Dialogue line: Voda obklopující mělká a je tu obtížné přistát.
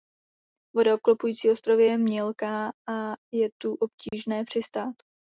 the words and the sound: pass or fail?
fail